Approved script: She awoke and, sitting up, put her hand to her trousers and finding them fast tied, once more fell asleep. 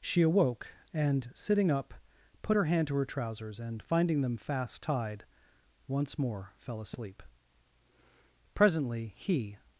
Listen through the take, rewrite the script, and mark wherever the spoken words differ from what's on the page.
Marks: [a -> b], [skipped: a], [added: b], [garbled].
She awoke and, sitting up, put her hand to her trousers and finding them fast tied, once more fell asleep. [added: Presently he]